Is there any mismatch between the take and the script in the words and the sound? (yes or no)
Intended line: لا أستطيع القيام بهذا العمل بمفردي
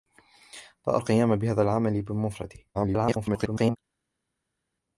yes